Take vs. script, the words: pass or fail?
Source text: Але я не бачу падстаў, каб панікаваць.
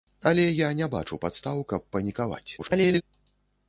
fail